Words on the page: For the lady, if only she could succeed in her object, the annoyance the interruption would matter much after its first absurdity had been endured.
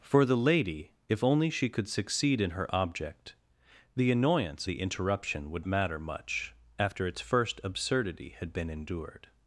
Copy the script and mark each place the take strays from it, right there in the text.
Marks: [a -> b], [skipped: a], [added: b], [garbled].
For the lady, if only she could succeed in her object, the annoyance the interruption would matter much after its first absurdity had been endured.